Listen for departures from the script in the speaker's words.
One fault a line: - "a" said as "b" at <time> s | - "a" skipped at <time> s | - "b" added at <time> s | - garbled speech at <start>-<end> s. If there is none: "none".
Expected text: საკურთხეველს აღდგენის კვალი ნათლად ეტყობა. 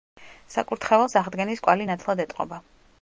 none